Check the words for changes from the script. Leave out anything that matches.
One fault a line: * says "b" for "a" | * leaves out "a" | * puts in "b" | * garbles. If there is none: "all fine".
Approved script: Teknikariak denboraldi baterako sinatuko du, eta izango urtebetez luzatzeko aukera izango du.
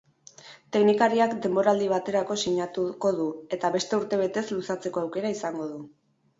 * says "beste" for "izango"